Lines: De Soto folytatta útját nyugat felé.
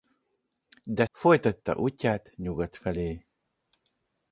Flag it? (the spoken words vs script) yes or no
yes